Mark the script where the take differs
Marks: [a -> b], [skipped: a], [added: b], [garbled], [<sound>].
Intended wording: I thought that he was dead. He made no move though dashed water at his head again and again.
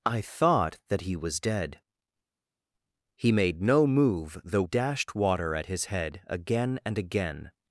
I thought that he was dead. He made no move though dashed water at his head again and again.